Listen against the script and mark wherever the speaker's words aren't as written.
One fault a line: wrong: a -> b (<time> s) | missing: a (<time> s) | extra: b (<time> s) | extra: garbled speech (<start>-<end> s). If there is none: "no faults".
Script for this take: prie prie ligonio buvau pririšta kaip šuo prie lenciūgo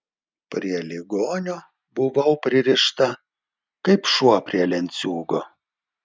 missing: prie (0.8 s)